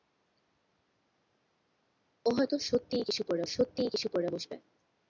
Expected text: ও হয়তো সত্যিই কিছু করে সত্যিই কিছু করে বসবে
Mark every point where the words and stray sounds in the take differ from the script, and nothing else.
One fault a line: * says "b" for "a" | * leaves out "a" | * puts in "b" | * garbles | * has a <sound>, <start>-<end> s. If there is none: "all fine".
all fine